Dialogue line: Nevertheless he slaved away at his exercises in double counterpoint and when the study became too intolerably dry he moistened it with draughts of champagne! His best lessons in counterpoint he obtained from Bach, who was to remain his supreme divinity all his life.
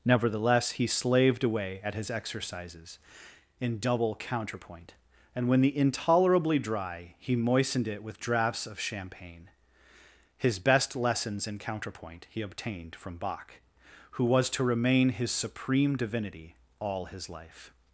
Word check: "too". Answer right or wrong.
wrong